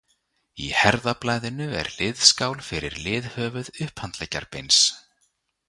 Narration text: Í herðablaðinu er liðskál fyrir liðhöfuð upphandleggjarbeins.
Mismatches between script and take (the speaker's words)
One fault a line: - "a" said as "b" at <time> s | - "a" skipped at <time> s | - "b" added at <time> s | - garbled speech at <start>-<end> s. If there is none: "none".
none